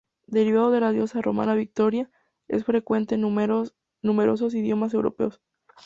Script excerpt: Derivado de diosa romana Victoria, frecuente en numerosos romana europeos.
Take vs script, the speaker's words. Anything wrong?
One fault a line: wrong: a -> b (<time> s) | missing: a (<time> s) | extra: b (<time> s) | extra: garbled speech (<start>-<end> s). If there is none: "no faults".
extra: la (0.8 s)
extra: es (2.5 s)
wrong: romana -> idiomas (4.5 s)